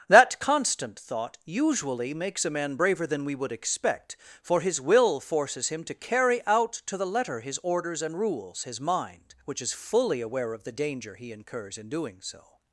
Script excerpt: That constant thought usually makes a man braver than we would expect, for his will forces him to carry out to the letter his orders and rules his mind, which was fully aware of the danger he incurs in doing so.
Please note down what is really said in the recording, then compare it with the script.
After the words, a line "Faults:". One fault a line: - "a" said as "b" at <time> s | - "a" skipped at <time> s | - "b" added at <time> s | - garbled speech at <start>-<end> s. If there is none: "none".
That constant thought usually makes a man braver than we would expect, for his will forces him to carry out to the letter his orders and rules his mind, which is fully aware of the danger he incurs in doing so.
Faults:
- "was" said as "is" at 9.6 s